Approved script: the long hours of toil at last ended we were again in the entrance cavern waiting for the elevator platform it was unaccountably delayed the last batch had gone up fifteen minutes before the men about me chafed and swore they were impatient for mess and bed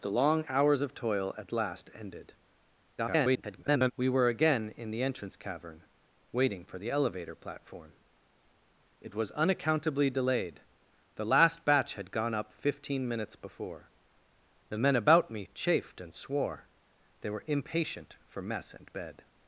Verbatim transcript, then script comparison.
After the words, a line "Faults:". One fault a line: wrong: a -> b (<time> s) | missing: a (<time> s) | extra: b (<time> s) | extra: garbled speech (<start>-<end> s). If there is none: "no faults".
the long hours of toil at last ended [garbled] we were again in the entrance cavern waiting for the elevator platform it was unaccountably delayed the last batch had gone up fifteen minutes before the men about me chafed and swore they were impatient for mess and bed
Faults:
extra: garbled speech (3.0-3.9 s)